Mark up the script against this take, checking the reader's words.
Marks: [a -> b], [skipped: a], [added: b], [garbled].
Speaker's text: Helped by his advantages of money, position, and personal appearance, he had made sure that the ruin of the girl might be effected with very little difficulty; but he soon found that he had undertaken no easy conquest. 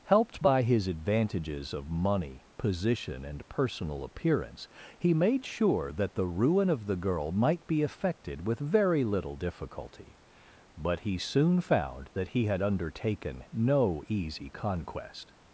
Helped by his advantages of money, position, and personal appearance, he [skipped: had] made sure that the ruin of the girl might be effected with very little difficulty; but he soon found that he had undertaken no easy conquest.